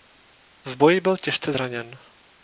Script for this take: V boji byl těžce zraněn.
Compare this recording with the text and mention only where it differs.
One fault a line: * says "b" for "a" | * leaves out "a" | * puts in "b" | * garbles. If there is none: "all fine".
all fine